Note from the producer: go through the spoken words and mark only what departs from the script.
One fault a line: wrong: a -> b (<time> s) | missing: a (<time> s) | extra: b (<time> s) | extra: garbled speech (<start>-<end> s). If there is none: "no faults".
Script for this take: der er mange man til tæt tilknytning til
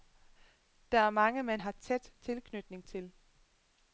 wrong: til -> har (1.6 s)